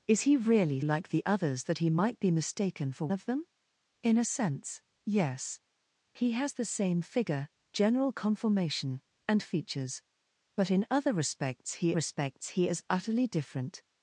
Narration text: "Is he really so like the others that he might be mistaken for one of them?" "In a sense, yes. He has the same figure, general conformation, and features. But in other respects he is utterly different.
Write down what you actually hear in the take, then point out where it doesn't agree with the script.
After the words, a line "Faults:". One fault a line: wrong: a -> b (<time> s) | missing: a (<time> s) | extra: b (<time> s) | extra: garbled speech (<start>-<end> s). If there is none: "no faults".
"Is he really like the others that he might be mistaken for of them?" "In a sense, yes. He has the same figure, general conformation, and features. But in other respects he respects he is utterly different.
Faults:
missing: so (0.8 s)
missing: one (3.1 s)
extra: respects he (11.9 s)